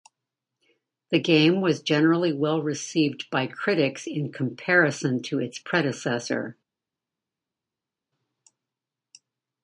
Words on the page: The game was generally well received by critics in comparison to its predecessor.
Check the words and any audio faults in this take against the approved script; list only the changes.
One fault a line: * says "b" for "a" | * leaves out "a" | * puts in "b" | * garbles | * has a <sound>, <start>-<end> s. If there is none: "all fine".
all fine